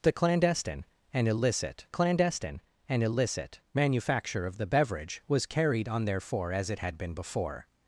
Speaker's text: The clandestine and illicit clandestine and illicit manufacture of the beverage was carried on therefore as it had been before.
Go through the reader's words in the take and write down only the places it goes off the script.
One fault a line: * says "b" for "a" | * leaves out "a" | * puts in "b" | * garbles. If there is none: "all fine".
all fine